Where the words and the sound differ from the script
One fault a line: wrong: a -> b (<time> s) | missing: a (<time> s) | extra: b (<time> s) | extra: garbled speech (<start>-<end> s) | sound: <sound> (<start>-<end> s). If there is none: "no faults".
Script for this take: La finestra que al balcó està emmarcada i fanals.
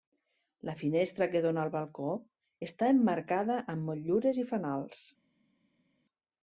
extra: dóna (1.4 s)
extra: amb motllures (3.8 s)